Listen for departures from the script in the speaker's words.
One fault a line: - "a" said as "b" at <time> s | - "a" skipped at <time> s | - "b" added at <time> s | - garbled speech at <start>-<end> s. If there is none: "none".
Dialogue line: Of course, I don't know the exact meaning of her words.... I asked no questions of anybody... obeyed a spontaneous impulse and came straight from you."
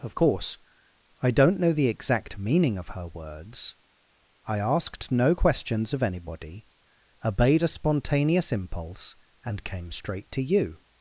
- "from" said as "to" at 10.3 s